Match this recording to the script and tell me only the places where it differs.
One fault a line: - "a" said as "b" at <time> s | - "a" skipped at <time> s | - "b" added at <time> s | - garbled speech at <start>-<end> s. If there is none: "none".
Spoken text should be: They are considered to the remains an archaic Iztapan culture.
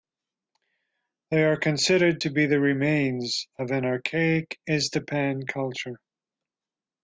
- "be" added at 2.3 s
- "of" added at 3.6 s